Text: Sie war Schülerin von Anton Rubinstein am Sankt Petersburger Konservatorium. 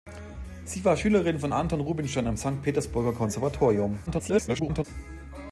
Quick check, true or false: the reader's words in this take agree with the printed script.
false